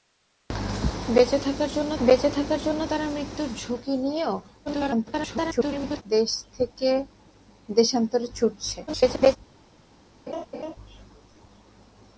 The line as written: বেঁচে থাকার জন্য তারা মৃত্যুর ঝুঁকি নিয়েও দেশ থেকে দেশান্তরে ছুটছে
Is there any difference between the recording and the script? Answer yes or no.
yes